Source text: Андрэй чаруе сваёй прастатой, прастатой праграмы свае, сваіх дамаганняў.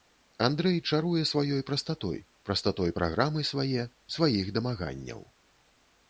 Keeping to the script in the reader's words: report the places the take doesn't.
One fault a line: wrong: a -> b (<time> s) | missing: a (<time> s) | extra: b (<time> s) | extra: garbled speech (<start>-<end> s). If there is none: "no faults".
no faults